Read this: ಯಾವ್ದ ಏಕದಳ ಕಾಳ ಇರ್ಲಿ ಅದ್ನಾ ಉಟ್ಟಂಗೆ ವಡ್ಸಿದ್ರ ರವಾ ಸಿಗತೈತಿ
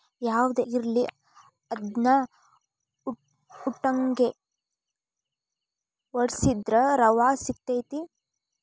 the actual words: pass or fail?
fail